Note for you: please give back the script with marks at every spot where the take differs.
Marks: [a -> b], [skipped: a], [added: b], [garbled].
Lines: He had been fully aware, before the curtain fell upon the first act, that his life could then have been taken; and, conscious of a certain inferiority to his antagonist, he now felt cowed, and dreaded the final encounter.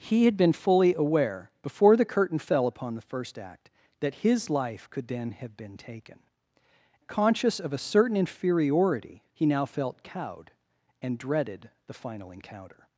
He had been fully aware, before the curtain fell upon the first act, that his life could then have been taken; [skipped: and,] conscious of a certain inferiority [skipped: to his antagonist,] he now felt cowed, and dreaded the final encounter.